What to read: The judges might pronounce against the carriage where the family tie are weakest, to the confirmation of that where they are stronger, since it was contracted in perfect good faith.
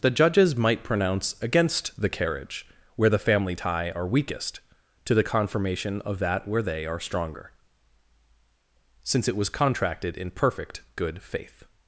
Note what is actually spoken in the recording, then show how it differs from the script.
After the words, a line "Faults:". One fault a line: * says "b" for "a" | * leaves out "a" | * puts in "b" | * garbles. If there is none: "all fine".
The judges might pronounce against the carriage where the family tie are weakest, to the confirmation of that where they are stronger, since it was contracted in perfect good faith.
Faults:
all fine